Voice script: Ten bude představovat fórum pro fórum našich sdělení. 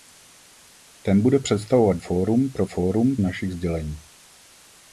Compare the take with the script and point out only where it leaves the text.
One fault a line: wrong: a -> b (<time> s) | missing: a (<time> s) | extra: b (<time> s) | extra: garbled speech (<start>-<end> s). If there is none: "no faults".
no faults